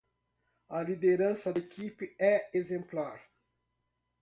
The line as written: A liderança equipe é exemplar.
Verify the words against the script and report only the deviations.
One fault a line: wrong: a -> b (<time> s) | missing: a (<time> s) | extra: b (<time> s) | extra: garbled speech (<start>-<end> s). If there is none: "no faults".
no faults